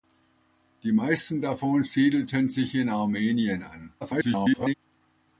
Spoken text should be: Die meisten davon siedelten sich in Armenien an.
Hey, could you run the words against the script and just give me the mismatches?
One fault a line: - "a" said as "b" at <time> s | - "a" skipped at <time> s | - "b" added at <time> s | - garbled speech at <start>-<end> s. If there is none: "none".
- garbled speech at 4.0-4.7 s